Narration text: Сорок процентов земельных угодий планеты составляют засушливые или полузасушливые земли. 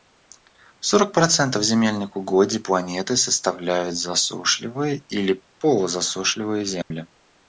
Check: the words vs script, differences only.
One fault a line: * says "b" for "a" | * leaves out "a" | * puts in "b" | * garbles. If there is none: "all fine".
all fine